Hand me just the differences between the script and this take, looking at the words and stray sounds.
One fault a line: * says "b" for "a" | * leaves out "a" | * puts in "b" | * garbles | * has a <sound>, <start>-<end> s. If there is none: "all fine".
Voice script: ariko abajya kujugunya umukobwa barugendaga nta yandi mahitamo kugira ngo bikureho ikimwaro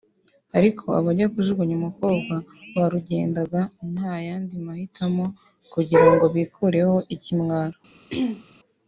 * has a throat clearing, 8.1-8.4 s